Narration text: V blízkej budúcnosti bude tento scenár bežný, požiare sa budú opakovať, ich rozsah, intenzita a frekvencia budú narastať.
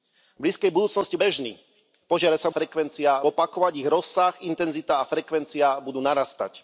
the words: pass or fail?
fail